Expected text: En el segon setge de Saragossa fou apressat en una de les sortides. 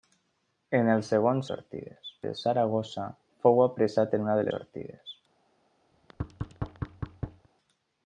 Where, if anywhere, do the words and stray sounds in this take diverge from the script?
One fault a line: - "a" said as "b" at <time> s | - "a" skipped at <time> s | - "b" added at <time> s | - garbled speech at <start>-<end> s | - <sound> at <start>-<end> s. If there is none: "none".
- "setge" said as "sortides" at 1.5 s
- "en" skipped at 4.2 s
- "les" skipped at 4.5 s
- thud at 5.9-7.5 s